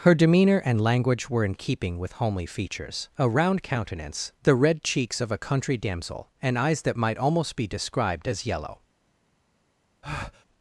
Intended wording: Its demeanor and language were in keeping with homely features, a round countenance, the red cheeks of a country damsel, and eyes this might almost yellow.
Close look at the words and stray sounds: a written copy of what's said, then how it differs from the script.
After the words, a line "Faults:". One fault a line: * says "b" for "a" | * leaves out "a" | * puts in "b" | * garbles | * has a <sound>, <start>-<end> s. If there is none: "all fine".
Her demeanor and language were in keeping with homely features, a round countenance, the red cheeks of a country damsel, and eyes that might almost be described as yellow.
Faults:
* says "Her" for "Its"
* says "that" for "this"
* puts in "be described as"
* has a breath, 10.0-10.5 s